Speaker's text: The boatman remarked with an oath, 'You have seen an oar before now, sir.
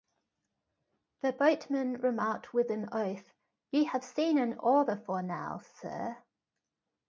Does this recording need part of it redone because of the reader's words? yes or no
no